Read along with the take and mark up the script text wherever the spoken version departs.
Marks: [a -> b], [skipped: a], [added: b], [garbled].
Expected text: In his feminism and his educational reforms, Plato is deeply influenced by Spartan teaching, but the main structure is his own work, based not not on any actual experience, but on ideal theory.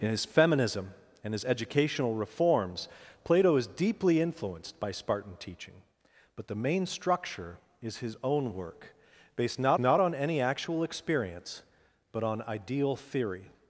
In his feminism and his educational reforms, Plato is deeply influenced by Spartan teaching, but the main structure is his own work, based not not on any actual experience, but on ideal theory.